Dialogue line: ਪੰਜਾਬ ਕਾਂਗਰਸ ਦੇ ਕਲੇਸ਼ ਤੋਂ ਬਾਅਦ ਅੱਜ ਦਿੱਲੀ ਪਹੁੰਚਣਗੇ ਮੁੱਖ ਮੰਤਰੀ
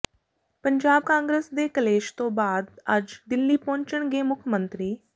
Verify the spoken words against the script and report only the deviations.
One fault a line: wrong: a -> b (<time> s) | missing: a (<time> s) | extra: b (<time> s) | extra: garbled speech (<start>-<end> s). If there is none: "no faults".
no faults